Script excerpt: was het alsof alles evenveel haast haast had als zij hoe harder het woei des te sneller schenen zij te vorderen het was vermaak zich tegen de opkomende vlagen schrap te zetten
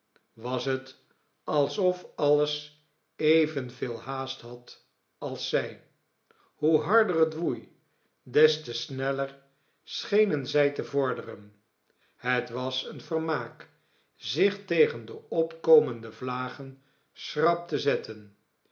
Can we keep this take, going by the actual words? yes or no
no